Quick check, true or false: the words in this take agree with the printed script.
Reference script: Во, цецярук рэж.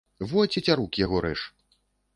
false